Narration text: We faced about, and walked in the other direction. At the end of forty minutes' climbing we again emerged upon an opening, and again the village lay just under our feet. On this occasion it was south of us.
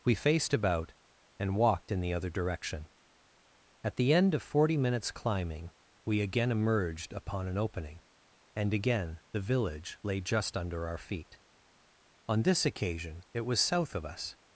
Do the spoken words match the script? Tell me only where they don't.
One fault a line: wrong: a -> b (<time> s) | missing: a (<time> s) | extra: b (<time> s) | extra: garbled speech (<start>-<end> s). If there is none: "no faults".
no faults